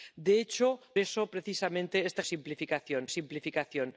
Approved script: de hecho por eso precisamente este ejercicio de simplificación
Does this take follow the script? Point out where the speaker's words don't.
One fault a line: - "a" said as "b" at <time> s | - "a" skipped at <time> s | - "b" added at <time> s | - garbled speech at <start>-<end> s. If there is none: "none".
- "por" skipped at 0.8 s
- "ejercicio" said as "simplificación" at 2.2 s